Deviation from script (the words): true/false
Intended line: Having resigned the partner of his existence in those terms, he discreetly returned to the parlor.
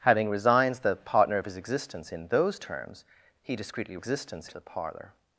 true